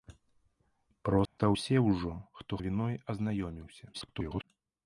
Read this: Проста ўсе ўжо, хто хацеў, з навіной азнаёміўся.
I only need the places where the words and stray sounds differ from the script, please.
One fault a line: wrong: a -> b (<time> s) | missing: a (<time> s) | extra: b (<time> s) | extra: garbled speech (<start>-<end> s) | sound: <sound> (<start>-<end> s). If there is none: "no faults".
sound: dropout (1.3-1.4 s)
missing: хацеў з (2.6 s)
extra: garbled speech (3.9-4.4 s)